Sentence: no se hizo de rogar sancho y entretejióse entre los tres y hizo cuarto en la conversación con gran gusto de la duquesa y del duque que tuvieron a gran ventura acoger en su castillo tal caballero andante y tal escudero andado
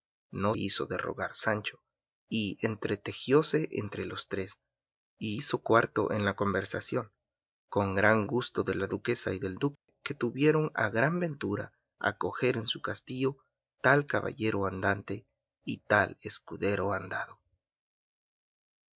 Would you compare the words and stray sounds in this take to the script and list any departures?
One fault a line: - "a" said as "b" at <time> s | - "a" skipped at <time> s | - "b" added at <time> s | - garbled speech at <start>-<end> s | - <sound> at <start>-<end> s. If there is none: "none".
- "se" skipped at 0.6 s
- dropout at 9.8-9.9 s